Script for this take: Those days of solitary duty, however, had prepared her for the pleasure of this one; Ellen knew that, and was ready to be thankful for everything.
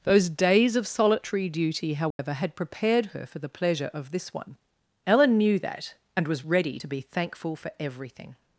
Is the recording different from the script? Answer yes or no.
no